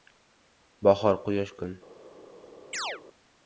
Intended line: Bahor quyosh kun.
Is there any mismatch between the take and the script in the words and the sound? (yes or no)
yes